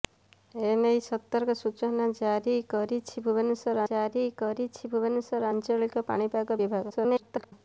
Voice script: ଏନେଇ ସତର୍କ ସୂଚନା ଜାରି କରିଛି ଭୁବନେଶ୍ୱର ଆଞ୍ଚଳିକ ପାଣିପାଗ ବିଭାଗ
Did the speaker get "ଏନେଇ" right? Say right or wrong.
right